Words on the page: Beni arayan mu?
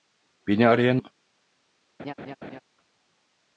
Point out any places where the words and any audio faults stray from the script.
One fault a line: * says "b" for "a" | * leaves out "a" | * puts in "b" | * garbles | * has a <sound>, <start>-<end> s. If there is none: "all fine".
* has a laugh, 2.0-2.6 s